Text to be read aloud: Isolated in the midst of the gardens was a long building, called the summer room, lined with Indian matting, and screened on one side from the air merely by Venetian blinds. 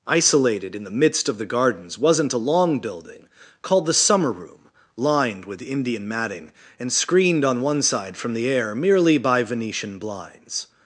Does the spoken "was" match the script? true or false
false